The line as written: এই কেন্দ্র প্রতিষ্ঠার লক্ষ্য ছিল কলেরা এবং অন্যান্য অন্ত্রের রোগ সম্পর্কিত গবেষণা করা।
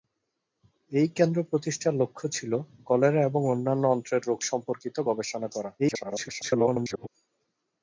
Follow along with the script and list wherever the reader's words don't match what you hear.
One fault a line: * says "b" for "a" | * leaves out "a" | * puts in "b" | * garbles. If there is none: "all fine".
* garbles